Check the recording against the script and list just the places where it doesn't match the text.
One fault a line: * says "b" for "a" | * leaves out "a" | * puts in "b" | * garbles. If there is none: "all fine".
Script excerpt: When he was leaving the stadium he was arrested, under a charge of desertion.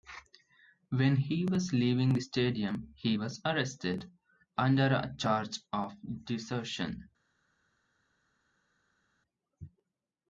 all fine